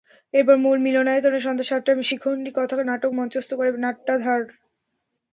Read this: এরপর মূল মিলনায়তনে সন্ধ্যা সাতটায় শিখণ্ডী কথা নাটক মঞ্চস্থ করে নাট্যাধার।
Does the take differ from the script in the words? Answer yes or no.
no